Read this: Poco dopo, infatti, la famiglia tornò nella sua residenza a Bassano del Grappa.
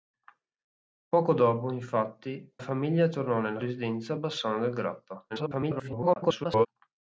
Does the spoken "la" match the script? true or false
false